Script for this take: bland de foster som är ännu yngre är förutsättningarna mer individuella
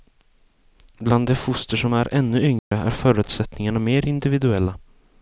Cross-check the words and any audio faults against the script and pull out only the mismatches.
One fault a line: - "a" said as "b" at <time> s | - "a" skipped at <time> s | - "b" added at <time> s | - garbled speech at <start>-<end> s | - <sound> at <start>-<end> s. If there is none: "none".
- dropout at 2.6-2.7 s